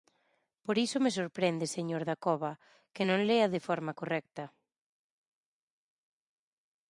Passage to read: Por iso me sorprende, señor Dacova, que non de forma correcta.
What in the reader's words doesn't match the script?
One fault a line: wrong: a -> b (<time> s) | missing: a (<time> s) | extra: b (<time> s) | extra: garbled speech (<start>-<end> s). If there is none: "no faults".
extra: lea (3.3 s)